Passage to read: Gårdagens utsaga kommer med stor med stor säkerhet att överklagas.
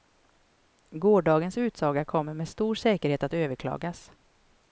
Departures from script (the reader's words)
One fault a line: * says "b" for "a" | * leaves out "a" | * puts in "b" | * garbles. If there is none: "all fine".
* leaves out "med stor"